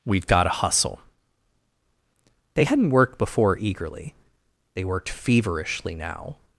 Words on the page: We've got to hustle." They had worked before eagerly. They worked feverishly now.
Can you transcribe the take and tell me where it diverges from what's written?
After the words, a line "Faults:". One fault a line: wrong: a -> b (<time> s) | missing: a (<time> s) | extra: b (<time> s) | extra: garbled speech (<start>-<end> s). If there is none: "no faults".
We've got to hustle." They hadn't worked before eagerly. They worked feverishly now.
Faults:
wrong: had -> hadn't (2.6 s)